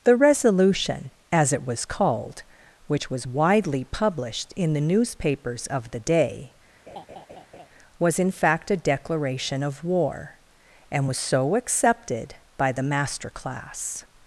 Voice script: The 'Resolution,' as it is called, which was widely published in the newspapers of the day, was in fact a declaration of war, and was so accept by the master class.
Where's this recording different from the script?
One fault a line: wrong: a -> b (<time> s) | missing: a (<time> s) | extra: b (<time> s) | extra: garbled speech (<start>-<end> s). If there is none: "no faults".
wrong: is -> was (1.6 s)
wrong: accept -> accepted (11.6 s)